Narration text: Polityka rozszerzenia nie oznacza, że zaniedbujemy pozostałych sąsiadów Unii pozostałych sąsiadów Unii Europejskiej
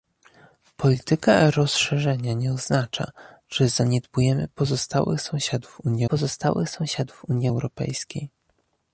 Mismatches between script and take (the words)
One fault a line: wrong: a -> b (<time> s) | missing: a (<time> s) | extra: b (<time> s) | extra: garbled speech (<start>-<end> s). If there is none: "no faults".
no faults